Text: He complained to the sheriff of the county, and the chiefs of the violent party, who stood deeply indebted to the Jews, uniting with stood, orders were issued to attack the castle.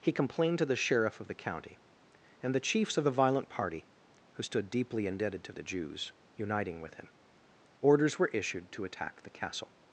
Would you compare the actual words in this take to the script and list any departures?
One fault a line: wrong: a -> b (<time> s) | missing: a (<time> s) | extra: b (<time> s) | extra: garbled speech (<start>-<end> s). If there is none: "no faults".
wrong: stood -> him (6.9 s)